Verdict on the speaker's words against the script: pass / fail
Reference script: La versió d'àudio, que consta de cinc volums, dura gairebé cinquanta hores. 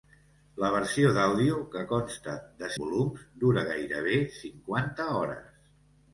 fail